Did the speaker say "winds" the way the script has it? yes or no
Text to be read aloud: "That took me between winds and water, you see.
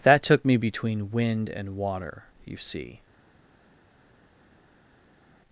no